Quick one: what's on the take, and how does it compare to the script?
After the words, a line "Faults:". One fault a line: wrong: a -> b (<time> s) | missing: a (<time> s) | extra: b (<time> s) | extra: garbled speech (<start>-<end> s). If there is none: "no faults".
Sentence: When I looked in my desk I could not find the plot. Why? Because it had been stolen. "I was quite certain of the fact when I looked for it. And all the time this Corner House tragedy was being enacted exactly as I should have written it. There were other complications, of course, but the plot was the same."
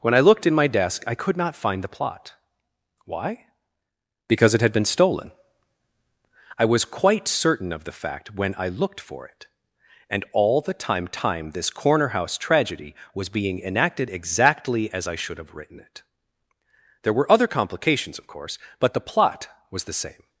When I looked in my desk I could not find the plot. Why? Because it had been stolen. "I was quite certain of the fact when I looked for it. And all the time time this Corner House tragedy was being enacted exactly as I should have written it. There were other complications, of course, but the plot was the same."
Faults:
extra: time (11.1 s)